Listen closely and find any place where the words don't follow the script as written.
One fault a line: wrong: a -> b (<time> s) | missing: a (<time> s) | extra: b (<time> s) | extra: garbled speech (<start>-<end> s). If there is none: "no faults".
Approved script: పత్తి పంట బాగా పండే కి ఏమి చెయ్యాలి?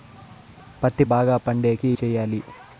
missing: పంట (1.0 s)
missing: ఏమి (1.9 s)